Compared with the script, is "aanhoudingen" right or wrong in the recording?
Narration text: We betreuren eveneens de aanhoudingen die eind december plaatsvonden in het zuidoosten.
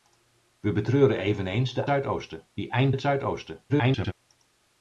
wrong